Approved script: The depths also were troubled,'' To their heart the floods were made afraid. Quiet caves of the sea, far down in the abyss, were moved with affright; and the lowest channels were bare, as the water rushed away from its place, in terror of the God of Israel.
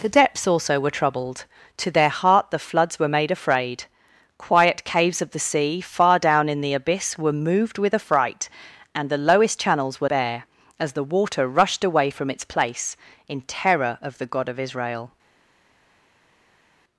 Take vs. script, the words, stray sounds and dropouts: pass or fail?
pass